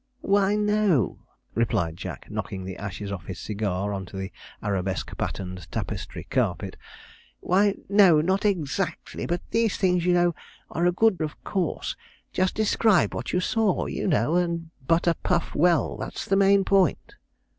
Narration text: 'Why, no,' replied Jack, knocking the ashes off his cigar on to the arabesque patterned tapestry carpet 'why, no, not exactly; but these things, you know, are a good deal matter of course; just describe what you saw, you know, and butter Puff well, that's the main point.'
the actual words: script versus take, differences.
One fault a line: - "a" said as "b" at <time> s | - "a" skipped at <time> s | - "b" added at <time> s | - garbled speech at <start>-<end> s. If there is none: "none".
- "deal matter" skipped at 11.2 s